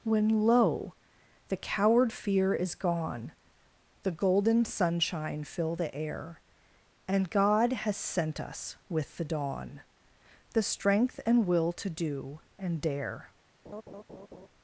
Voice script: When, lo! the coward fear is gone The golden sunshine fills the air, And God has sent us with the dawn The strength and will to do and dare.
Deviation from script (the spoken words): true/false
true